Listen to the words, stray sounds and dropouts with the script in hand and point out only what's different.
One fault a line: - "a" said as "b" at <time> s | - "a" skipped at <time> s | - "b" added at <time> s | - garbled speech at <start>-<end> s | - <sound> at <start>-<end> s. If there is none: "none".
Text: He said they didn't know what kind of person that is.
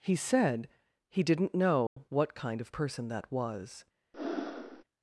- "they" said as "he" at 1.1 s
- dropout at 1.9-2.0 s
- "is" said as "was" at 3.3 s
- breath at 4.1-4.8 s